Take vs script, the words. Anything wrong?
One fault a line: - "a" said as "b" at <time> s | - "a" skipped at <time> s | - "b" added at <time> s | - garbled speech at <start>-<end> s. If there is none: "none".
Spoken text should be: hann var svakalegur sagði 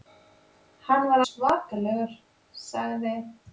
none